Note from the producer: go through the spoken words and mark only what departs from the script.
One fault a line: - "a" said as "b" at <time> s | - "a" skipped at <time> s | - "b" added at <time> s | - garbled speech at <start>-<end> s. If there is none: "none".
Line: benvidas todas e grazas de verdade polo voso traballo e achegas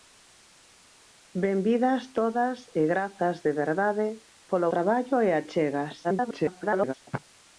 - "voso" skipped at 4.7 s
- garbled speech at 6.0-6.9 s